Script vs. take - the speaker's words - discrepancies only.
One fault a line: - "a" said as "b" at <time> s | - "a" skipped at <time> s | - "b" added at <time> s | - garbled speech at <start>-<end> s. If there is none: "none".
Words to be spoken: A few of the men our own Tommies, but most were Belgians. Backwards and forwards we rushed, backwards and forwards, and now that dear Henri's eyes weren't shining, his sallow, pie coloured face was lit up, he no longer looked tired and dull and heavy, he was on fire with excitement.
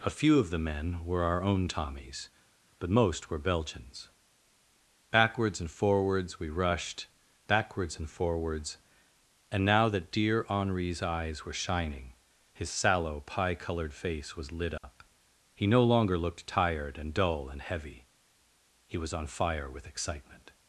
- "were" added at 1.1 s
- "weren't" said as "were" at 11.4 s